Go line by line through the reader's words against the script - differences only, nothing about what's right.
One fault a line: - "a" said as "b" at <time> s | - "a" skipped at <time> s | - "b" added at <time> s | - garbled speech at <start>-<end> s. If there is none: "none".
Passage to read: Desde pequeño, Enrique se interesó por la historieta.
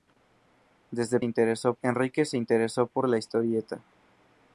- "pequeño" said as "interesó" at 1.2 s